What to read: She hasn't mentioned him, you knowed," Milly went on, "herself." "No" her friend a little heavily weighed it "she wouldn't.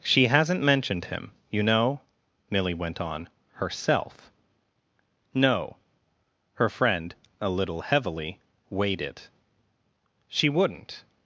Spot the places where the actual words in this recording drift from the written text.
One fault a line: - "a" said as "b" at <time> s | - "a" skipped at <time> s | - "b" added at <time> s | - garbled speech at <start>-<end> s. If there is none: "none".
- "knowed" said as "know" at 1.6 s